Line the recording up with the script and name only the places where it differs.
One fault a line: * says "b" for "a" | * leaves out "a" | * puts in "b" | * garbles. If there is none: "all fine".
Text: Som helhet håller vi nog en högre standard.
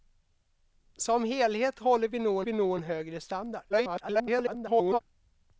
* puts in "vi nog"
* garbles